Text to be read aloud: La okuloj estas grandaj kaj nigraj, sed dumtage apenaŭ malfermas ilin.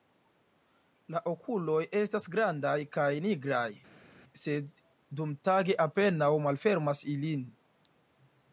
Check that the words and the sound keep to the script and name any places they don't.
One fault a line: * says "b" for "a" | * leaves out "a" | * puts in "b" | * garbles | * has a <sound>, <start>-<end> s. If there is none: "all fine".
all fine